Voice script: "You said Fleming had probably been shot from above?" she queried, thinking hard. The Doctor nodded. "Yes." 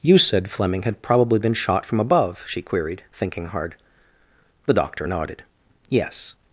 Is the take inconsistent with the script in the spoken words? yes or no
no